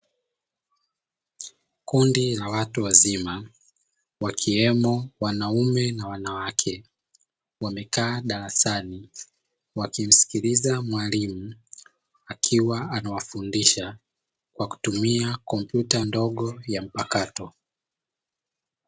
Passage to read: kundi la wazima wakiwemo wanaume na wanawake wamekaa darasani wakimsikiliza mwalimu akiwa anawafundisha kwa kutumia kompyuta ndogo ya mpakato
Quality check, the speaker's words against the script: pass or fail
fail